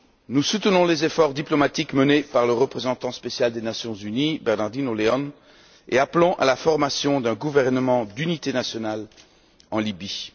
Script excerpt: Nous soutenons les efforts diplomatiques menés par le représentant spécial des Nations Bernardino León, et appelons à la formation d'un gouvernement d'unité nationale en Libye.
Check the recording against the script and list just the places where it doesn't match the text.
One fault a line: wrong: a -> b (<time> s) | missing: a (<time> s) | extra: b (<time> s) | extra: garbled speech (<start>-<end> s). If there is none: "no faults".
extra: unies (3.9 s)